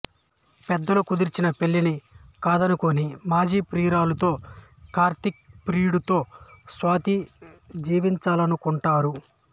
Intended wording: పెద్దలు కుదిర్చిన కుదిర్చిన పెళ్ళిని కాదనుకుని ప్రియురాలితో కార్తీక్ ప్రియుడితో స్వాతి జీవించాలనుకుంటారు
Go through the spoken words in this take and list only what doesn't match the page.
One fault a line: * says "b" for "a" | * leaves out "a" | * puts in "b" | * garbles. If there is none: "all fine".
* leaves out "కుదిర్చిన"
* puts in "మాజీ"